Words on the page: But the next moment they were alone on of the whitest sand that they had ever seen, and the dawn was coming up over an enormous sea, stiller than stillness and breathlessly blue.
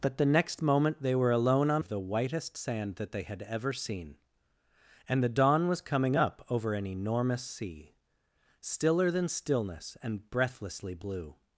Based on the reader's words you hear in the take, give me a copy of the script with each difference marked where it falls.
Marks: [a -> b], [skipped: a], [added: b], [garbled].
But the next moment they were alone on of the whitest sand that they had ever seen, and the dawn was coming up over an enormous sea, stiller than stillness and breathlessly blue.